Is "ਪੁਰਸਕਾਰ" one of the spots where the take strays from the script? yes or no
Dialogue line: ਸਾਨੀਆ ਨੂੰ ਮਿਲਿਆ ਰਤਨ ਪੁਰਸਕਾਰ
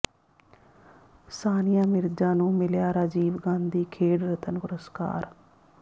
no